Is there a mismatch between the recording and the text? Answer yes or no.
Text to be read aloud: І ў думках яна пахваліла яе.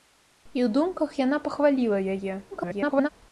yes